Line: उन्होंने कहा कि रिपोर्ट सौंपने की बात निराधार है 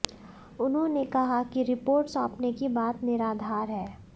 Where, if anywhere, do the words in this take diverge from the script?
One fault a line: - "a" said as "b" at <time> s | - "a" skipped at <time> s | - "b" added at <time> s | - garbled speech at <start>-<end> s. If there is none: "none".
none